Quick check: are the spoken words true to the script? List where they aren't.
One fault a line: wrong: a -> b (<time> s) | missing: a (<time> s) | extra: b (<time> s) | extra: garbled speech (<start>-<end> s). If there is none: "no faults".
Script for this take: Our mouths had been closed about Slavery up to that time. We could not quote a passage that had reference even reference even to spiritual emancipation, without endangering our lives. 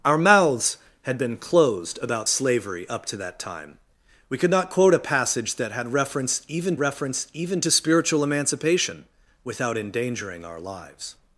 no faults